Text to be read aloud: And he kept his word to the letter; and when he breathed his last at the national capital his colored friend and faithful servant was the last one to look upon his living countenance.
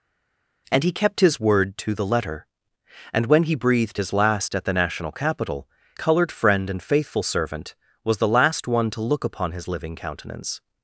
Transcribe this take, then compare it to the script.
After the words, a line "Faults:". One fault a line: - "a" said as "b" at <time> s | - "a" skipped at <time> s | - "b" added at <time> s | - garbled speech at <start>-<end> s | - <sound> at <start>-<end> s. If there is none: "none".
And he kept his word to the letter; and when he breathed his last at the national capital colored friend and faithful servant was the last one to look upon his living countenance.
Faults:
- "his" skipped at 5.7 s